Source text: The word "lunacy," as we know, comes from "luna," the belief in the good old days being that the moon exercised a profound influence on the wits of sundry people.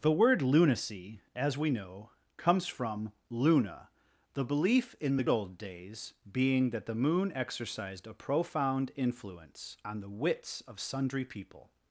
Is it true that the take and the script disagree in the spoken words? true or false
true